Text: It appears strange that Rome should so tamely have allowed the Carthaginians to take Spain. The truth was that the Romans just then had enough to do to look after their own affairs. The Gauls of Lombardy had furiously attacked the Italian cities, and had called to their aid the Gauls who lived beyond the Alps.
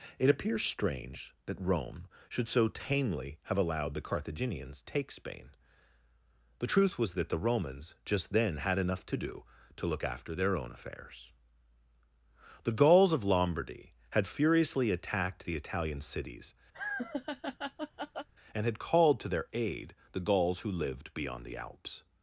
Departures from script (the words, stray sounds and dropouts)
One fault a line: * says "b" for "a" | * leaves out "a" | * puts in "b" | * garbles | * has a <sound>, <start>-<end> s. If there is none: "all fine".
* leaves out "to"
* has a laugh, 16.7-18.3 s